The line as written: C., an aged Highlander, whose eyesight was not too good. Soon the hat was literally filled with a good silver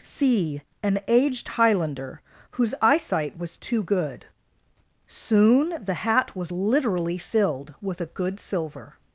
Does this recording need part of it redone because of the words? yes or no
yes